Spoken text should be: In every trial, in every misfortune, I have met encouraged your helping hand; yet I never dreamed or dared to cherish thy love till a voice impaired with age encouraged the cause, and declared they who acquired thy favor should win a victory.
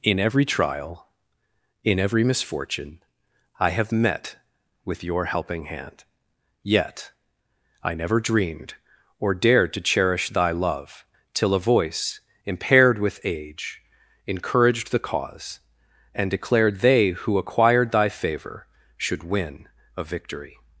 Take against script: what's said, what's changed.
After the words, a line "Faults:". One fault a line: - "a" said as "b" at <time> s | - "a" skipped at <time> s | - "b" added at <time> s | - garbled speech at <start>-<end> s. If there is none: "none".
In every trial, in every misfortune, I have met with your helping hand; yet I never dreamed or dared to cherish thy love till a voice impaired with age encouraged the cause, and declared they who acquired thy favor should win a victory.
Faults:
- "encouraged" said as "with" at 4.8 s